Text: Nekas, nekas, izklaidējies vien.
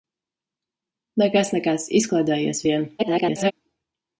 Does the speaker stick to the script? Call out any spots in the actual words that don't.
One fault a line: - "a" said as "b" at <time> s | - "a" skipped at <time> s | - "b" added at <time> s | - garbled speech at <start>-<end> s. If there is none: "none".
- garbled speech at 3.0-3.5 s